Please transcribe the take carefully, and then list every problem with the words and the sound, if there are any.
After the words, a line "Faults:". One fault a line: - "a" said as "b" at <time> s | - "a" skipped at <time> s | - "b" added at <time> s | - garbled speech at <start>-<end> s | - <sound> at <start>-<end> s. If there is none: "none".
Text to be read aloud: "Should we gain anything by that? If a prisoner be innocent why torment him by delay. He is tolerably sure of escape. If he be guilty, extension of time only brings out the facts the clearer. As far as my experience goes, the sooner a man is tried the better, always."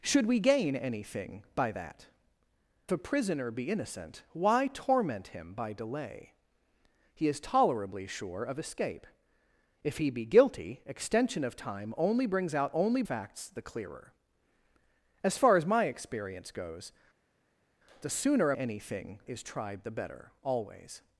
"Should we gain anything by that? A prisoner be innocent why torment him by delay. He is tolerably sure of escape. If he be guilty, extension of time only brings out only facts the clearer. As far as my experience goes, the sooner a anything is tried the better, always."
Faults:
- "If" skipped at 2.1 s
- "the" said as "only" at 12.7 s
- "man" said as "anything" at 18.5 s